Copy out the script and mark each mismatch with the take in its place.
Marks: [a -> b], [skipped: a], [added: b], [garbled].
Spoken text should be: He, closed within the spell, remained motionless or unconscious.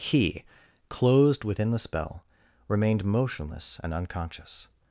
He, closed within the spell, remained motionless [or -> and] unconscious.